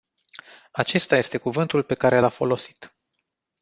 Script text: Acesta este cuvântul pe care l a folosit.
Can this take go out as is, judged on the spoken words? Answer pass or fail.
pass